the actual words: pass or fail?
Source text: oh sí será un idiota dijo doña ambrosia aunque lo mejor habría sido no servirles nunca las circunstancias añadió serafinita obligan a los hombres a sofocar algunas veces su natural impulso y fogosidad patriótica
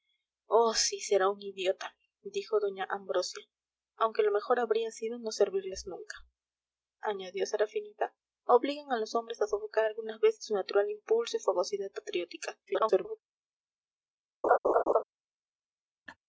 fail